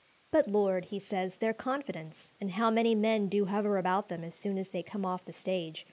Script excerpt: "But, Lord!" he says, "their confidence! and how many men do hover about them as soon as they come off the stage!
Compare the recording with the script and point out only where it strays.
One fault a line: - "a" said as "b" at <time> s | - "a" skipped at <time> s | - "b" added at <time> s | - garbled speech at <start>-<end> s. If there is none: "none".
none